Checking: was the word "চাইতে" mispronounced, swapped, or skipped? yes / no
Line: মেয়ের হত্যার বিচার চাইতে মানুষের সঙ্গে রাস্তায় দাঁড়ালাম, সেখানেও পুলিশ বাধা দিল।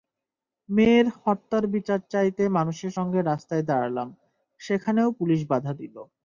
no